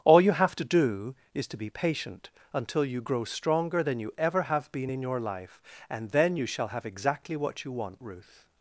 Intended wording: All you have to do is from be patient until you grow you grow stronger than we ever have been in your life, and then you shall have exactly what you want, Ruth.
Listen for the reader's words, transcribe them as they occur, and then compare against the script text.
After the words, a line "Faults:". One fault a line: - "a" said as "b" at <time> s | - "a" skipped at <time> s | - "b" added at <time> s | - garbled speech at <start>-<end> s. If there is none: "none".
All you have to do is to be patient until you grow stronger than you ever have been in your life, and then you shall have exactly what you want, Ruth.
Faults:
- "from" said as "to" at 1.5 s
- "you grow" skipped at 3.2 s
- "we" said as "you" at 4.0 s